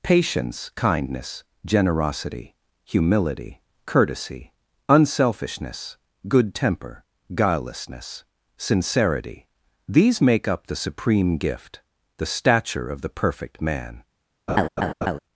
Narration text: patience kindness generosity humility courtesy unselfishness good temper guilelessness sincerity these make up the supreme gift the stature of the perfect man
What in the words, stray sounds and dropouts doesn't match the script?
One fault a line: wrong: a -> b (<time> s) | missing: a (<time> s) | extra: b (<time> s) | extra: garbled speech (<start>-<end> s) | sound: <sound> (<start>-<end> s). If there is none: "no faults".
sound: laugh (14.5-15.2 s)